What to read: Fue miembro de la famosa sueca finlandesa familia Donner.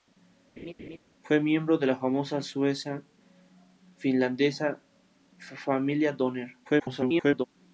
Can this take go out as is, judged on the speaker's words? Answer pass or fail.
fail